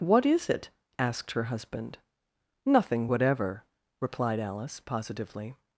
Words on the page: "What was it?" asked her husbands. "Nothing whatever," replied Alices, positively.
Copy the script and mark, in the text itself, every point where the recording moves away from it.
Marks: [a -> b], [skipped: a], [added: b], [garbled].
"What [was -> is] it?" asked her [husbands. -> husband] "Nothing whatever," replied [Alices, -> Alice] positively.